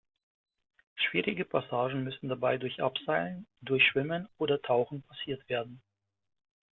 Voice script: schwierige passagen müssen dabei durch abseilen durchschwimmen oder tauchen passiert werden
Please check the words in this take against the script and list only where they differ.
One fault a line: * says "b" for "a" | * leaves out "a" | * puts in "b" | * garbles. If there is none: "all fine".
all fine